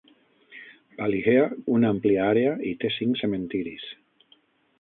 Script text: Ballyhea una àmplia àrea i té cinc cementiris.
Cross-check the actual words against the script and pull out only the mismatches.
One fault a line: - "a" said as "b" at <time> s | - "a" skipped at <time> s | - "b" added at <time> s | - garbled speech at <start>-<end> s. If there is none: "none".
none